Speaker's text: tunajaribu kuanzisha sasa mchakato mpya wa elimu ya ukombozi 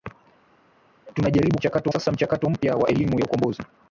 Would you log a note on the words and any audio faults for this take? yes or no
yes